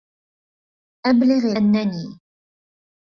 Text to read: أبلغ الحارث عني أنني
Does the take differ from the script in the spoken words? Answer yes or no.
yes